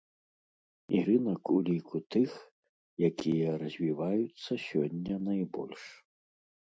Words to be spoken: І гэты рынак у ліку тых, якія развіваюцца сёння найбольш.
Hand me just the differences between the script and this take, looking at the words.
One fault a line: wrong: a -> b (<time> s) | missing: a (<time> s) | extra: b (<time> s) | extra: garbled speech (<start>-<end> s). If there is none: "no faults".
missing: гэты (1.0 s)